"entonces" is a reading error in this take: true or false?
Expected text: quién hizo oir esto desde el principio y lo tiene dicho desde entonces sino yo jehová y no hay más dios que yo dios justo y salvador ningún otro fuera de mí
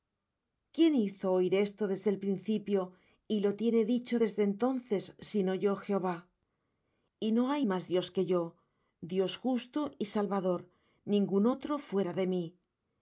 false